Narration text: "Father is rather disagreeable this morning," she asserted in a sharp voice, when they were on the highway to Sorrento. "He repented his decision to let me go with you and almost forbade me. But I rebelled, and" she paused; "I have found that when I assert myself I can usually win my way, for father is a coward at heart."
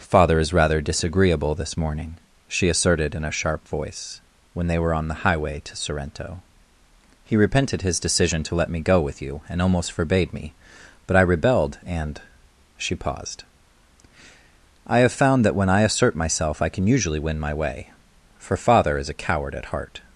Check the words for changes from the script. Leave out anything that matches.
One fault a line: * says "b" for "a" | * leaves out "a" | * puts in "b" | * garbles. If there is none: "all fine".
all fine